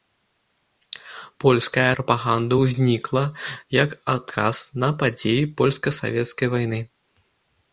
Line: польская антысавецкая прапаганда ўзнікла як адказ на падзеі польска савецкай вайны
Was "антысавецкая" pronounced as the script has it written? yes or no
no